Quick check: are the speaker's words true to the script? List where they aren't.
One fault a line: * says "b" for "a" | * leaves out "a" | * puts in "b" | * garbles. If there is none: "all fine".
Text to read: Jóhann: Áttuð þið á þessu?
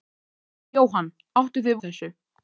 all fine